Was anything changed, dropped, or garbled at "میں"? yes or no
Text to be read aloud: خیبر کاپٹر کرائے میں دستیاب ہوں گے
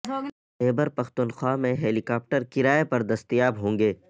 yes